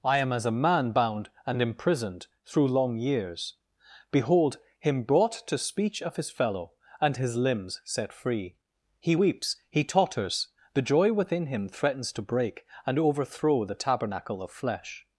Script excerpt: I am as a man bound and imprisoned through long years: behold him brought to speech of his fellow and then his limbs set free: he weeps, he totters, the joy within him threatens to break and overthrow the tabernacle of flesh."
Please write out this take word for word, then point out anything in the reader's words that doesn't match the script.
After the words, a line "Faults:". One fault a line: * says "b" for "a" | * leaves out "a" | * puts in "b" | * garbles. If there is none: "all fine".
I am as a man bound and imprisoned through long years: behold him brought to speech of his fellow and his limbs set free: he weeps, he totters, the joy within him threatens to break and overthrow the tabernacle of flesh."
Faults:
* leaves out "then"